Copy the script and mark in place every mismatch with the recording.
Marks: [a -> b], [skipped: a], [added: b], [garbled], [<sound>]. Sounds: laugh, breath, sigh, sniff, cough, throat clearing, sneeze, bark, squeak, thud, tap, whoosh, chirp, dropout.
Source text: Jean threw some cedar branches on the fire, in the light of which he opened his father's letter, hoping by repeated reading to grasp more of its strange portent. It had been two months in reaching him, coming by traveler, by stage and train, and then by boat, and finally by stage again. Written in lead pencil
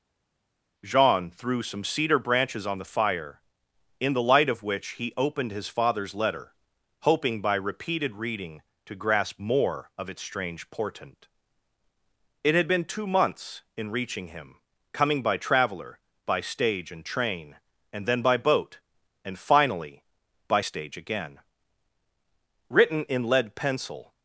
Jean threw some cedar branches on the fire, in the light of which he opened his father's letter, hoping by repeated reading to grasp more of its strange portent. It had been two months in reaching him, coming by traveler, by stage and train, and then by boat, and finally by stage again. Written in lead pencil